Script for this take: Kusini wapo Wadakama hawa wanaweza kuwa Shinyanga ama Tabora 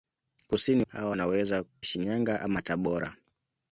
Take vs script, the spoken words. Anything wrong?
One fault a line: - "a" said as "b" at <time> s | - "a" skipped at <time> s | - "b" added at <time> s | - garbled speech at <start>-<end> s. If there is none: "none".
- "wapo Wadakama" skipped at 0.8 s
- "kuwa" skipped at 1.6 s